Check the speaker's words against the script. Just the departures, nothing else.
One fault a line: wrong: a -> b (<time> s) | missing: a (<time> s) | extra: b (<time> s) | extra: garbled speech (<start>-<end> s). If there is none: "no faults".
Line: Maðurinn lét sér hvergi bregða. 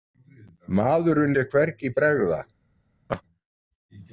missing: lét (1.4 s)